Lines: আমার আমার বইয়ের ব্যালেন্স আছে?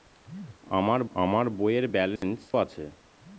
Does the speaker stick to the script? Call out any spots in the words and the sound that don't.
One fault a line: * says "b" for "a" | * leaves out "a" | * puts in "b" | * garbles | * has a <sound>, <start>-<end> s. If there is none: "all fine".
* has a dropout, 2.2-2.2 s